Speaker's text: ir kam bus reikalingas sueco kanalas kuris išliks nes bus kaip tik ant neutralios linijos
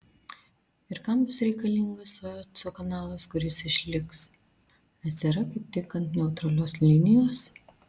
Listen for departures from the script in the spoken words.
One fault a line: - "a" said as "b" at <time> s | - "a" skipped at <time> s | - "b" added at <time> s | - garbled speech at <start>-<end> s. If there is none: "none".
- "bus" said as "yra" at 5.3 s